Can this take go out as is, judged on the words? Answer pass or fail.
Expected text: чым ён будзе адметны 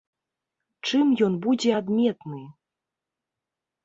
pass